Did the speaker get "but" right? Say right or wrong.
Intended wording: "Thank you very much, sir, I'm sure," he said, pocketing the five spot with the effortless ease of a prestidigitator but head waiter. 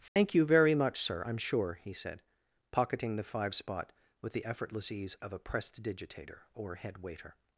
wrong